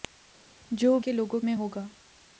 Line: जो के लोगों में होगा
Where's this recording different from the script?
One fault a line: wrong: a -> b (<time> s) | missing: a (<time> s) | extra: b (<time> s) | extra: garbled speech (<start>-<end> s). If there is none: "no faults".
no faults